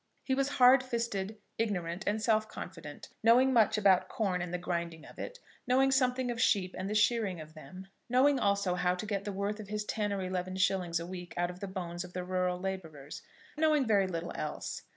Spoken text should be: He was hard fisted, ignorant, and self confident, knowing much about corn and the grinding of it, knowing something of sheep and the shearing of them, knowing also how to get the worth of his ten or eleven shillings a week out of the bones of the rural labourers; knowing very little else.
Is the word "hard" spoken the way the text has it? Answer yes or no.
yes